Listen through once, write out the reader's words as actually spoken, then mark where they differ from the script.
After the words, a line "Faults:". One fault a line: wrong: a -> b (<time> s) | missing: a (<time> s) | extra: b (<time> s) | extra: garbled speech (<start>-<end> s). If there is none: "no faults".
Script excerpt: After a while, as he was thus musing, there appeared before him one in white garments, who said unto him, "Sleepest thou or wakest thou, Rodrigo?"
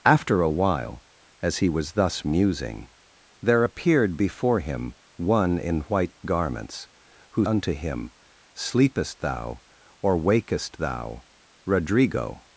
After a while, as he was thus musing, there appeared before him one in white garments, who unto him, "Sleepest thou or wakest thou, Rodrigo?"
Faults:
missing: said (7.4 s)